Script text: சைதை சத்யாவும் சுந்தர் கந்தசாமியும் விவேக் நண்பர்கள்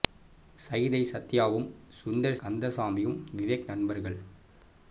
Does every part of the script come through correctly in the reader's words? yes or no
yes